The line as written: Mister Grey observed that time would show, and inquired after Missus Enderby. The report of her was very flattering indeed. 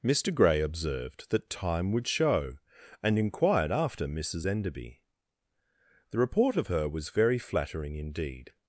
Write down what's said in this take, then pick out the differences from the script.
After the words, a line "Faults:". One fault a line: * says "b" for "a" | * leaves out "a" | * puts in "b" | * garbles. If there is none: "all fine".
Mister Grey observed that time would show, and inquired after Missus Enderby. The report of her was very flattering indeed.
Faults:
all fine